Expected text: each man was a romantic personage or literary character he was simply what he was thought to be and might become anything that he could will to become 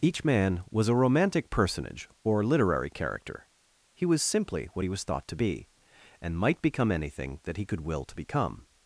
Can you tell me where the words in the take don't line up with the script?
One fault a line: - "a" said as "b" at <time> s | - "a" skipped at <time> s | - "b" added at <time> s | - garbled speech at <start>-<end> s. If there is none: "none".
none